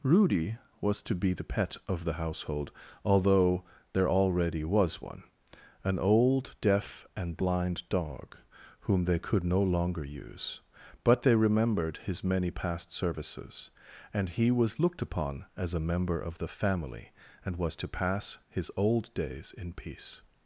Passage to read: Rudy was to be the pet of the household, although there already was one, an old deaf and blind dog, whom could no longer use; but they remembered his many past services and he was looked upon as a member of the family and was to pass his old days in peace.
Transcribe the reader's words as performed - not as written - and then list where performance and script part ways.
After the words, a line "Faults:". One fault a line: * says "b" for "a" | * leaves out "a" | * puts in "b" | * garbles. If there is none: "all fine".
Rudy was to be the pet of the household, although there already was one, an old deaf and blind dog, whom they could no longer use; but they remembered his many past services and he was looked upon as a member of the family and was to pass his old days in peace.
Faults:
* puts in "they"